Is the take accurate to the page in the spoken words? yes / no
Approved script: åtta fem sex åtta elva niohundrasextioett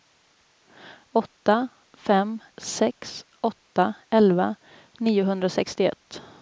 yes